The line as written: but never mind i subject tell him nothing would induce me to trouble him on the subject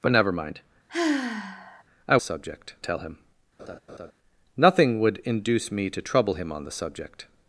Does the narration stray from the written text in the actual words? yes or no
no